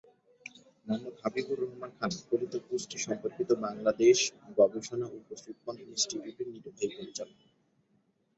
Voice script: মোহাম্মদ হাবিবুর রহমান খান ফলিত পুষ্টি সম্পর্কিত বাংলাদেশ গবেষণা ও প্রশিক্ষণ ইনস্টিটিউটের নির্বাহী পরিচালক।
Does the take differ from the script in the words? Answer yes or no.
no